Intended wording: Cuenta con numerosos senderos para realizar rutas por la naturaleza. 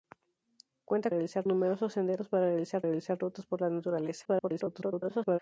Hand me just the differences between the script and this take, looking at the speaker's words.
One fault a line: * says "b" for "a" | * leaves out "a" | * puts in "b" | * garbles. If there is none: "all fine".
* says "realizar" for "con"
* puts in "realizar"
* garbles